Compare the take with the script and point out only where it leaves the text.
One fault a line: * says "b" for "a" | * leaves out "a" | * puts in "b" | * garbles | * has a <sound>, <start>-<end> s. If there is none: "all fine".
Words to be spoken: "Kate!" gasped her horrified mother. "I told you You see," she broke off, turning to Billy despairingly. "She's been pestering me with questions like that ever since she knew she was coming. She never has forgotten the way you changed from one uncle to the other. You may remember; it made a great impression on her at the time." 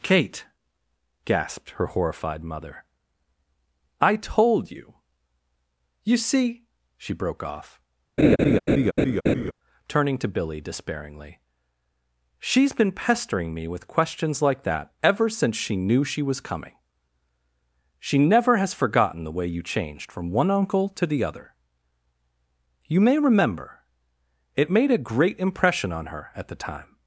* has a laugh, 8.2-9.5 s